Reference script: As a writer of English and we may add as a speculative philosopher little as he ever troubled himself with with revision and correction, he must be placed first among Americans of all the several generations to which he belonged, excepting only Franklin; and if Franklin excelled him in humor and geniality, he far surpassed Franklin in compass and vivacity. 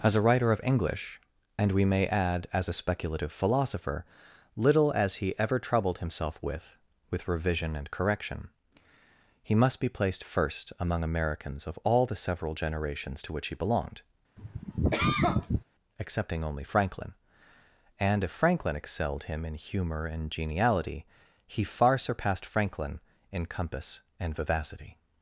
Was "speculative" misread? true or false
false